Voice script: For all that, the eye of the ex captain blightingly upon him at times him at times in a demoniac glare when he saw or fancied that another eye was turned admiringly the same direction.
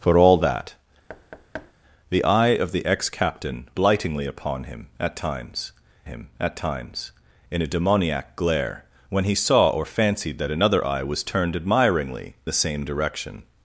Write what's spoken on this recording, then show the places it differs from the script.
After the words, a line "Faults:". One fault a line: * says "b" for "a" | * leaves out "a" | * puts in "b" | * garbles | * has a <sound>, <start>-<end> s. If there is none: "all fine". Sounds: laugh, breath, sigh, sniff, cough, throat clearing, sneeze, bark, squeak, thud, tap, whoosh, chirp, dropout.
For all that, the eye of the ex captain blightingly upon him at times him at times in a demoniac glare when he saw or fancied that another eye was turned admiringly the same direction.
Faults:
* has a thud, 1.1-1.7 s